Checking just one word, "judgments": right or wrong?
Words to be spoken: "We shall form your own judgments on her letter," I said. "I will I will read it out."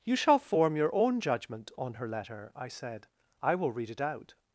wrong